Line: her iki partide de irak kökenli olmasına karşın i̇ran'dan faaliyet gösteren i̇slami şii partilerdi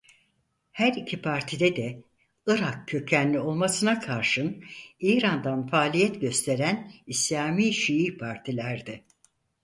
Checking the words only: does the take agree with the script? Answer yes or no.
yes